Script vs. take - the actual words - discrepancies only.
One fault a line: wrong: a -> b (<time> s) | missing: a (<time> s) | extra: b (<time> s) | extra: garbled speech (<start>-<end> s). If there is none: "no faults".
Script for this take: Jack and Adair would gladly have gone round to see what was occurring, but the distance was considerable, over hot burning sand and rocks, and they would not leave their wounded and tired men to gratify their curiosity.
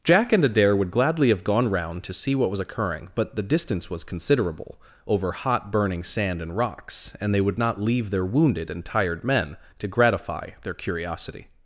no faults